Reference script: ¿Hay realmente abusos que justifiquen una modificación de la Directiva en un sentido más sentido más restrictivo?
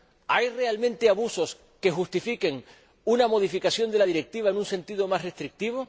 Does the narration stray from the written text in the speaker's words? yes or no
yes